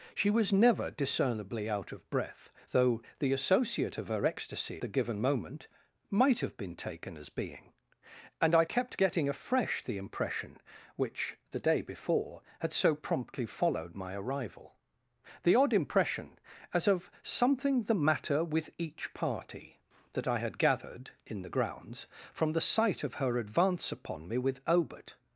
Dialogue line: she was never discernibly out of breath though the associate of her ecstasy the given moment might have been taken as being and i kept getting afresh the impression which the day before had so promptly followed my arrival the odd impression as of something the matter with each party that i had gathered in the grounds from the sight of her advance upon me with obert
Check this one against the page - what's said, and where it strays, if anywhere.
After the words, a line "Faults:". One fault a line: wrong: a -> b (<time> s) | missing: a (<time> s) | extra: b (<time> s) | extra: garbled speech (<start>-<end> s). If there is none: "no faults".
she was never discernibly out of breath though the associate of her ecstasy the given moment might have been taken as being and i kept getting afresh the impression which the day before had so promptly followed my arrival the odd impression as of something the matter with each party that i had gathered in the grounds from the sight of her advance upon me with obert
Faults:
no faults